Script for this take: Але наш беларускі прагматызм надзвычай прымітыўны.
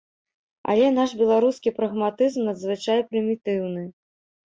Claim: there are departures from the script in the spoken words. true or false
false